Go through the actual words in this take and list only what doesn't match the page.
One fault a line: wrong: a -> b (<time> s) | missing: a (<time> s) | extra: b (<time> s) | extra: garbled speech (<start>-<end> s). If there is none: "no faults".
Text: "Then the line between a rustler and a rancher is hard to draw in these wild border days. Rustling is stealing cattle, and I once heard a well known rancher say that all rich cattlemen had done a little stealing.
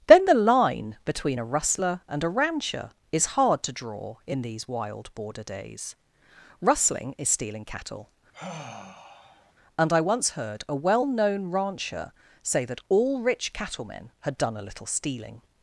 no faults